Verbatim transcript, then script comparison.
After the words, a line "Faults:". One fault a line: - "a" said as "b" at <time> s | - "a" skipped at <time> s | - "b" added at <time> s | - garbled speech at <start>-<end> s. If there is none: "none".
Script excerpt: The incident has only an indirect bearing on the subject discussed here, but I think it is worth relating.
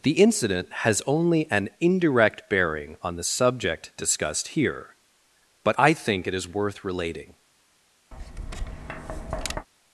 The incident has only an indirect bearing on the subject discussed here, but I think it is worth relating.
Faults:
none